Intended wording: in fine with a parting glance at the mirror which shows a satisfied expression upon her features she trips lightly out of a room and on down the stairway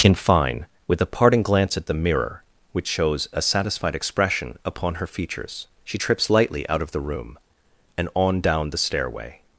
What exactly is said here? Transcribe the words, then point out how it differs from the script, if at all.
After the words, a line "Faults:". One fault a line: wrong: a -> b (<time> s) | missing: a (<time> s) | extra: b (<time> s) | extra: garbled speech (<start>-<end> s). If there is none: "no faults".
in fine with a parting glance at the mirror which shows a satisfied expression upon her features she trips lightly out of the room and on down the stairway
Faults:
wrong: a -> the (6.9 s)